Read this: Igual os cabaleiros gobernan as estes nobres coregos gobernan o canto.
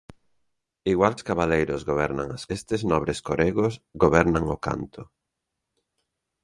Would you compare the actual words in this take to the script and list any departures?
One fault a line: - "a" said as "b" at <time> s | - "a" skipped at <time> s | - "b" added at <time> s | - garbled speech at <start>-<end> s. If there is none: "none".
none